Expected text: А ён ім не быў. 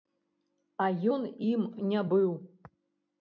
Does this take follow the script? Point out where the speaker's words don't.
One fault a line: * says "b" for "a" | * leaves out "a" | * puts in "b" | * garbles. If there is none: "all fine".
all fine